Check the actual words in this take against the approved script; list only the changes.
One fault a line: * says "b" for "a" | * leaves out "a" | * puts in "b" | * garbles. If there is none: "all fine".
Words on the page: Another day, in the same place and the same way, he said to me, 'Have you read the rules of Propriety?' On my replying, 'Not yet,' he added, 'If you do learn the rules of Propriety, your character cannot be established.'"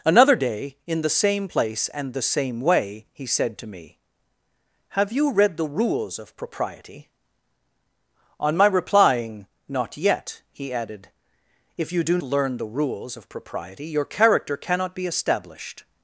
all fine